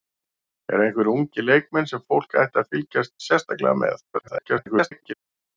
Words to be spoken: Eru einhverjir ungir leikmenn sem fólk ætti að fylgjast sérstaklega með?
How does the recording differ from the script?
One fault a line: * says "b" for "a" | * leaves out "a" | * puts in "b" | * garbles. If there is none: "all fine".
* garbles